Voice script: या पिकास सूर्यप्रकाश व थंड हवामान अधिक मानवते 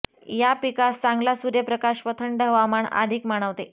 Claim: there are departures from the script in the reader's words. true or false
true